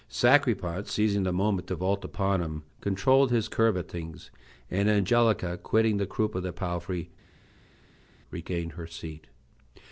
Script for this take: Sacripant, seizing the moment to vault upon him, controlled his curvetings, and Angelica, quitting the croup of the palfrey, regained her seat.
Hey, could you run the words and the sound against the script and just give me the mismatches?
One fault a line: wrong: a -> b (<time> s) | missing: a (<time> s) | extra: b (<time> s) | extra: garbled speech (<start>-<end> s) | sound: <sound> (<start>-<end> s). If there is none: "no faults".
no faults